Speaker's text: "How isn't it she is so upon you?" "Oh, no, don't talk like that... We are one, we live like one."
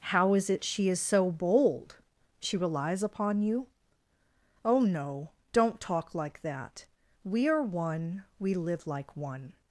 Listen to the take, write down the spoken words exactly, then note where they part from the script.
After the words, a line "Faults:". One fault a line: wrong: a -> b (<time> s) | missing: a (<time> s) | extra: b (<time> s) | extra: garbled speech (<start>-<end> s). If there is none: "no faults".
"How is it she is so bold? She relies upon you?" "Oh, no, don't talk like that... We are one, we live like one."
Faults:
wrong: isn't -> is (0.3 s)
extra: bold She relies (1.3 s)